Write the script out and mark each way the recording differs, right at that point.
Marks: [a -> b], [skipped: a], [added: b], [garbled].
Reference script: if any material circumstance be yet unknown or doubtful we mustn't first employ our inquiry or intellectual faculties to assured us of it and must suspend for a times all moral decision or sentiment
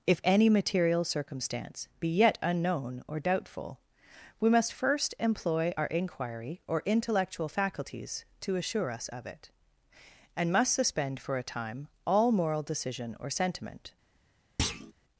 if any material circumstance be yet unknown or doubtful we [mustn't -> must] first employ our inquiry or intellectual faculties to [assured -> assure] us of it and must suspend for a [times -> time] all moral decision or sentiment